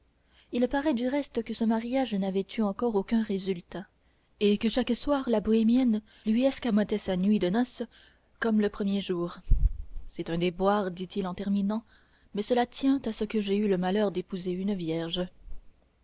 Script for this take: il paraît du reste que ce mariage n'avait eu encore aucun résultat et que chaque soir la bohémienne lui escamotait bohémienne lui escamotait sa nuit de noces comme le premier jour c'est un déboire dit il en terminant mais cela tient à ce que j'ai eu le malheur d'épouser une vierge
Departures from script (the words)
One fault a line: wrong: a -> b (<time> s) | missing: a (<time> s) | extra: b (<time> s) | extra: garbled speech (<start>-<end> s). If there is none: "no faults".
missing: bohémienne lui escamotait (7.0 s)